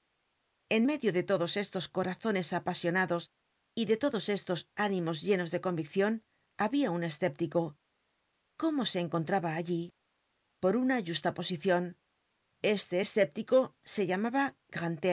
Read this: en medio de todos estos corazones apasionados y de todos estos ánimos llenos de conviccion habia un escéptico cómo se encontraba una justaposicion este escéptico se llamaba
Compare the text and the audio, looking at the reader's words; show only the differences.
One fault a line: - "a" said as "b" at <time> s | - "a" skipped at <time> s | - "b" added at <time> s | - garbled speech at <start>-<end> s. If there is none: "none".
- "allí por" added at 9.5 s